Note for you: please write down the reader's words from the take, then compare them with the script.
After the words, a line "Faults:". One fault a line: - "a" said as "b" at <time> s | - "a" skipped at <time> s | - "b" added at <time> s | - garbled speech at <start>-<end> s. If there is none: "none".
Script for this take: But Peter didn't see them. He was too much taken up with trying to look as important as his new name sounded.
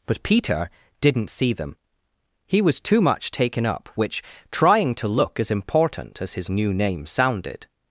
But Peter didn't see them. He was too much taken up which trying to look as important as his new name sounded.
Faults:
- "with" said as "which" at 4.0 s